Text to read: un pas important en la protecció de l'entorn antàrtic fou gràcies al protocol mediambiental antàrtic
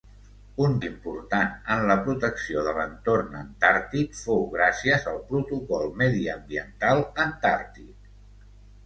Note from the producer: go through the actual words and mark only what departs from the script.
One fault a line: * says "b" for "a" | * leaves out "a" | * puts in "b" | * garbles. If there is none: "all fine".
* leaves out "pas"